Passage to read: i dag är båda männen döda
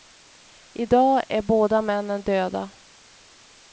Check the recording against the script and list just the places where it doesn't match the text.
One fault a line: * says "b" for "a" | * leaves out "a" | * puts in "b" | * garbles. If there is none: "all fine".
all fine